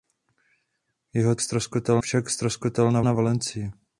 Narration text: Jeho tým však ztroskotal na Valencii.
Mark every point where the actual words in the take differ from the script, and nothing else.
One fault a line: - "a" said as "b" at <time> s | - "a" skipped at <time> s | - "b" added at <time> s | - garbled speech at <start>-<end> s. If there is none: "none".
- "tým" said as "ztroskotal" at 1.4 s
- "na" added at 3.0 s